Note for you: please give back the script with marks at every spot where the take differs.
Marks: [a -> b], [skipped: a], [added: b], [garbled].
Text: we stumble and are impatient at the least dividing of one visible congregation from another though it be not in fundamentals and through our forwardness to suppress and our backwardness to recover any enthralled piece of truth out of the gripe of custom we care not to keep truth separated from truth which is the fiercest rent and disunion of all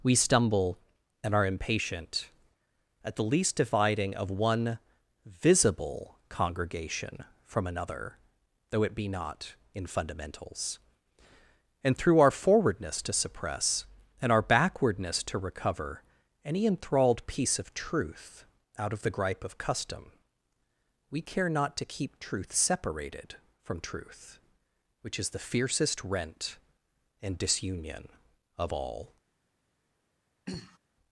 we stumble and are impatient at the least dividing of one visible congregation from another though it be not in fundamentals and through our forwardness to suppress and our backwardness to recover any enthralled piece of truth out of the gripe of custom we care not to keep truth separated from truth which is the fiercest rent and disunion of all